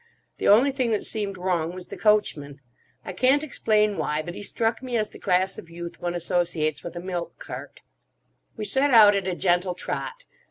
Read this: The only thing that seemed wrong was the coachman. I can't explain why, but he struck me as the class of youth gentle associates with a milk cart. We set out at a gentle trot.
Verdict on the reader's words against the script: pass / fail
fail